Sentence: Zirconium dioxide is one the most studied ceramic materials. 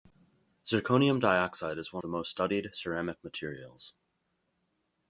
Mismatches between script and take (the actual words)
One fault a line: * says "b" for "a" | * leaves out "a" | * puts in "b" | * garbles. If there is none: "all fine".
all fine